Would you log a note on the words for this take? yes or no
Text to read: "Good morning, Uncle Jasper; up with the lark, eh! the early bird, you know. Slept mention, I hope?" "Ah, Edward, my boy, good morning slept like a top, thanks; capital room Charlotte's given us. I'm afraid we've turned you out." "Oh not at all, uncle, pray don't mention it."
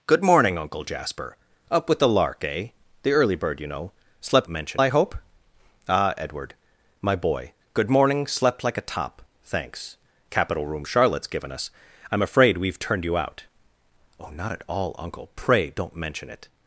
no